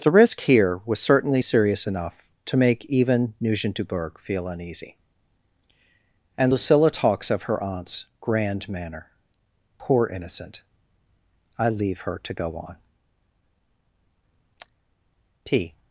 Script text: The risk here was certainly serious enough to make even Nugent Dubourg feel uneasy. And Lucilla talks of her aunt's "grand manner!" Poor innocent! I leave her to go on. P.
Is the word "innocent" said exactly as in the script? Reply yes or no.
yes